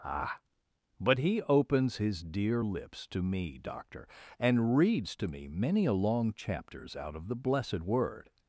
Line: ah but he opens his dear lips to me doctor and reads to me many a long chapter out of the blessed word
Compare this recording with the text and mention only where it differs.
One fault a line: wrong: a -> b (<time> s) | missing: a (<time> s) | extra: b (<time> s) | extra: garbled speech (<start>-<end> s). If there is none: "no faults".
wrong: chapter -> chapters (6.3 s)